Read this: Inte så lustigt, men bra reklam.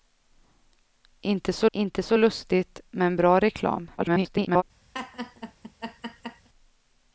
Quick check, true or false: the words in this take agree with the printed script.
false